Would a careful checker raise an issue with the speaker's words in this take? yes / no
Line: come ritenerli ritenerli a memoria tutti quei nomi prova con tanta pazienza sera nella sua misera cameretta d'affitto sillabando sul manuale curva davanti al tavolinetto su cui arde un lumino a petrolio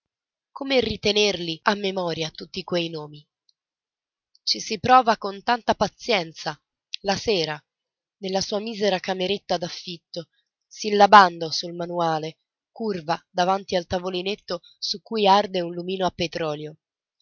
yes